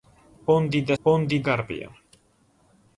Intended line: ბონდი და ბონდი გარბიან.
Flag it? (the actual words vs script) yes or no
no